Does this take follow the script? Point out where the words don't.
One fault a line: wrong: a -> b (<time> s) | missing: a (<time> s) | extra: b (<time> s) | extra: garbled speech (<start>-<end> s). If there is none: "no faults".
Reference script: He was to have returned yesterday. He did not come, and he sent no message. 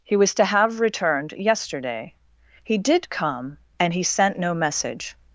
missing: not (3.1 s)